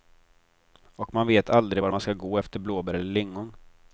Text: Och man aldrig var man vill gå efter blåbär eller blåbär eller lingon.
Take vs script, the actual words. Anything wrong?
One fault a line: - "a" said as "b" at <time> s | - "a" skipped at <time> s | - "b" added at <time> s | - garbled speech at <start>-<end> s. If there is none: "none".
- "vet" added at 1.3 s
- "vill" said as "ska" at 2.0 s
- "blåbär eller" skipped at 3.1 s